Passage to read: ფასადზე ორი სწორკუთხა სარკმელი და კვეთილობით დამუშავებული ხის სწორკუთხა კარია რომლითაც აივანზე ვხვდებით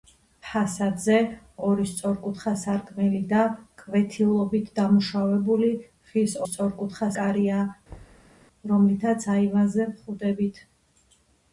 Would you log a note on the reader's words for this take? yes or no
no